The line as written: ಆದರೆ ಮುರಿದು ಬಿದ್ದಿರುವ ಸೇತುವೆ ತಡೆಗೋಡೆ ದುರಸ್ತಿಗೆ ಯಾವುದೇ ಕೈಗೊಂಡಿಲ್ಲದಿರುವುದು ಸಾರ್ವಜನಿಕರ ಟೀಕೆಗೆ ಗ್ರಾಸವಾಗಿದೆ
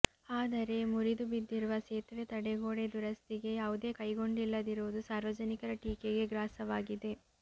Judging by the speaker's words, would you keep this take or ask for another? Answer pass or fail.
pass